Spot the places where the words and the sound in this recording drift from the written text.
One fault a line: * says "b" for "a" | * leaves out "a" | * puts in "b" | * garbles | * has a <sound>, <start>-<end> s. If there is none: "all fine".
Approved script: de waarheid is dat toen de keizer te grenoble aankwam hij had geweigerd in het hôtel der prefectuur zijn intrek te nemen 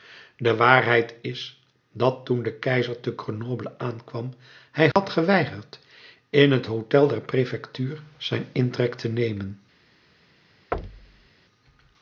* has a dropout, 4.9-5.0 s
* has a thud, 10.7-11.3 s